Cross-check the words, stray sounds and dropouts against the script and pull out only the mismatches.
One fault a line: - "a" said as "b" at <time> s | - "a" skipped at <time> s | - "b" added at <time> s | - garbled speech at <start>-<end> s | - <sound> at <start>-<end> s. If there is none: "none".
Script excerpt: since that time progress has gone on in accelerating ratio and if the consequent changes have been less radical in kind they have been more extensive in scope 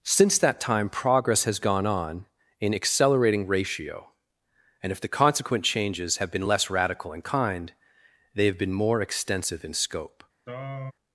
- throat clearing at 10.5-10.9 s